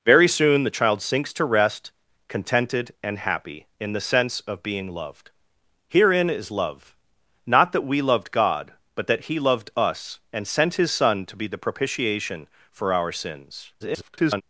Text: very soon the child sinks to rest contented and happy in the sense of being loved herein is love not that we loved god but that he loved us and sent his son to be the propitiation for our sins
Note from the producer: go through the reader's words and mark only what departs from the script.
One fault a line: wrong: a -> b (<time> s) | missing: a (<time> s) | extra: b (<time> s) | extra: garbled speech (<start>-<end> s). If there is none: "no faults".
extra: garbled speech (13.8-14.4 s)